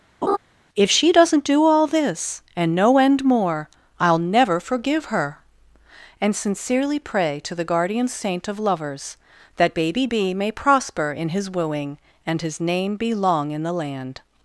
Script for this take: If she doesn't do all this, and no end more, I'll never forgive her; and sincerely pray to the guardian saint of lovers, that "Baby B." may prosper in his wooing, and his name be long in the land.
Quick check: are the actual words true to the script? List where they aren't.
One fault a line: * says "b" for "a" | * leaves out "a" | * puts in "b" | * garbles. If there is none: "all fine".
all fine